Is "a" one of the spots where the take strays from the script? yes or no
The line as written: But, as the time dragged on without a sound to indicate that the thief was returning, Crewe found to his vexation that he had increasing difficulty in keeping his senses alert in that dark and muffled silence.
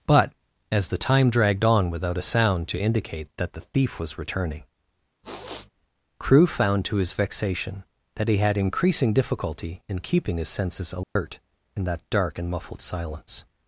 no